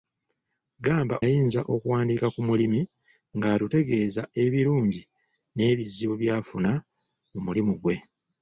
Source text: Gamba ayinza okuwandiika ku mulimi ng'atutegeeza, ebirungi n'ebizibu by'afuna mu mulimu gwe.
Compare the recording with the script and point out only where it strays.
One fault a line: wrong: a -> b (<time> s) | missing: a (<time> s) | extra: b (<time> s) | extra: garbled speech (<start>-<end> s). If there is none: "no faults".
no faults